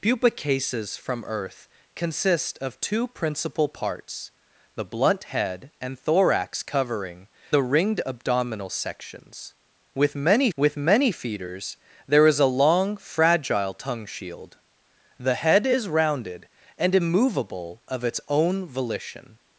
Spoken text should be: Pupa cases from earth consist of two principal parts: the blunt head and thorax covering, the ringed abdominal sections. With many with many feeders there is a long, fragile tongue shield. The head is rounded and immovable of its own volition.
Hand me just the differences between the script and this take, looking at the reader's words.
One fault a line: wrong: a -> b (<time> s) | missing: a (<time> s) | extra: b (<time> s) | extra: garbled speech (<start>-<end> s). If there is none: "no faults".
no faults